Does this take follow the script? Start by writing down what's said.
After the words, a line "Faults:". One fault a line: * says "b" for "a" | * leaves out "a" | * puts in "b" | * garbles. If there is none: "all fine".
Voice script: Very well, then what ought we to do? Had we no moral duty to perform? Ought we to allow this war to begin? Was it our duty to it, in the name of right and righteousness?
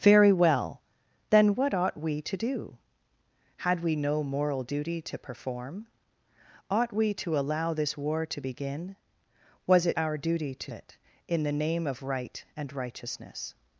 Very well, then what ought we to do? Had we no moral duty to perform? Ought we to allow this war to begin? Was it our duty to it, in the name of right and righteousness?
Faults:
all fine